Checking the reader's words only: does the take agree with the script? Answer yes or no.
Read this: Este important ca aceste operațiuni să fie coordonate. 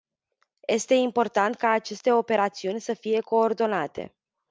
yes